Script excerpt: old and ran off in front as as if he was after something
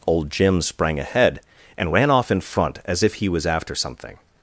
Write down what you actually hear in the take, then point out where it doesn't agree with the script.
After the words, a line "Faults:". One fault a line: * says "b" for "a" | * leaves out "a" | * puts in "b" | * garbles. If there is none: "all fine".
old jim sprang ahead and ran off in front as if he was after something
Faults:
* puts in "jim sprang ahead"
* leaves out "as"